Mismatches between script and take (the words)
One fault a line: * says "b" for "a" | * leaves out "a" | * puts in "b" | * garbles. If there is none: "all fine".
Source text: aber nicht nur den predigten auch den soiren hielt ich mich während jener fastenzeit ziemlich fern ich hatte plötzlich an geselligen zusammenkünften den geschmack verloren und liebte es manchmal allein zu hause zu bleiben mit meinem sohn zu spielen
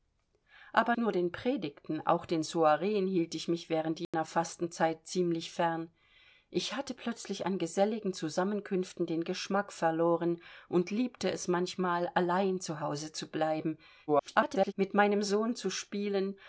* leaves out "nicht"
* garbles